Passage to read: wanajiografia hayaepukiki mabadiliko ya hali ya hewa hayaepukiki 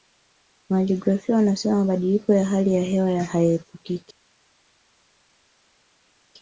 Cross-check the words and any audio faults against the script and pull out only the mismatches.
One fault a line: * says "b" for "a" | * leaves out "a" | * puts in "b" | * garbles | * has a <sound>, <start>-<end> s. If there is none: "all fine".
* says "wanasema" for "hayaepukiki"